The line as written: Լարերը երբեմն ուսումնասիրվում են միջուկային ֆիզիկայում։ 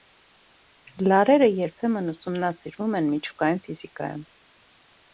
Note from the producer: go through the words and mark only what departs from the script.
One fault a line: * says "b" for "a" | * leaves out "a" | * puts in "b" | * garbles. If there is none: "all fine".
all fine